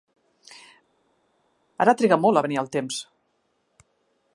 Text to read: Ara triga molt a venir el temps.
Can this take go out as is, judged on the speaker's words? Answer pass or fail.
pass